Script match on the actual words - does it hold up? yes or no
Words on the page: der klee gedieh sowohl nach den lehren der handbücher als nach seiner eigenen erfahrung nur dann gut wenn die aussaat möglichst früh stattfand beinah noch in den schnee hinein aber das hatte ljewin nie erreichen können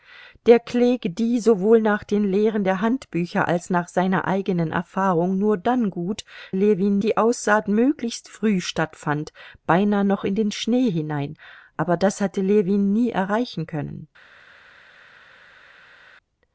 no